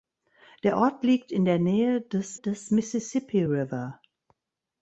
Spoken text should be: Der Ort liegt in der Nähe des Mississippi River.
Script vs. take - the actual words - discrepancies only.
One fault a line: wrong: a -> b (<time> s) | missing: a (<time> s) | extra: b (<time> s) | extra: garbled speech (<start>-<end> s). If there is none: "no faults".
extra: des (2.3 s)